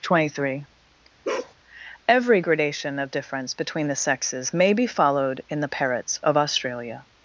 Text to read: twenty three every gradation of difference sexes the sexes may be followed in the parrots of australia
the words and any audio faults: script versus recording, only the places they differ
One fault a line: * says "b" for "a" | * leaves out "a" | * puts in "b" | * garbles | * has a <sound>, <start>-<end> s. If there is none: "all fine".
* has a bark, 1.2-1.5 s
* says "between" for "sexes"